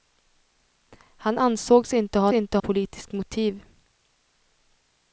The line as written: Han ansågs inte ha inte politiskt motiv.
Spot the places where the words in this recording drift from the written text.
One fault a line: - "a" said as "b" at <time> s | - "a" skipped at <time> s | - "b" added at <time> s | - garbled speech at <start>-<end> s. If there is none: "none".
none